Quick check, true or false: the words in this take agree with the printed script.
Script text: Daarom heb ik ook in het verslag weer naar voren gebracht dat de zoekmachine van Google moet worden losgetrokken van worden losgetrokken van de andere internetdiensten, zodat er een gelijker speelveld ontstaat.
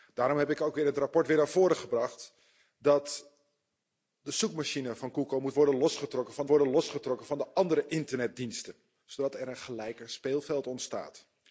true